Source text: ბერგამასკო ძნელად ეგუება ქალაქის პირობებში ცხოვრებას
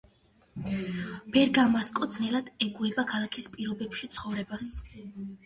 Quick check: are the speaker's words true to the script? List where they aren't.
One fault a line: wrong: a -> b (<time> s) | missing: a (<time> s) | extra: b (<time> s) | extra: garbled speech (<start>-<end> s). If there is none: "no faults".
no faults